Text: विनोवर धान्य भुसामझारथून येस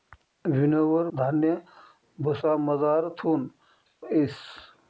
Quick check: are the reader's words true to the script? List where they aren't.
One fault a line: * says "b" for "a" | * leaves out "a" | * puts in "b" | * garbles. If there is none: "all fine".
all fine